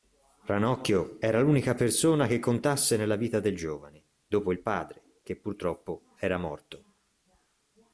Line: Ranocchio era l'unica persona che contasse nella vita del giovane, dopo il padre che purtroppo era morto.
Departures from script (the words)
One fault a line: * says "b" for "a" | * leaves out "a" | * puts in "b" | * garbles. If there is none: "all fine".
all fine